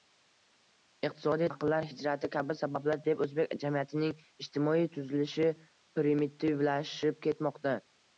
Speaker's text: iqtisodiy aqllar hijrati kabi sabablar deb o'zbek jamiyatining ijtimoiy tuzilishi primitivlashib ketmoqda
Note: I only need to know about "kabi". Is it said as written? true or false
true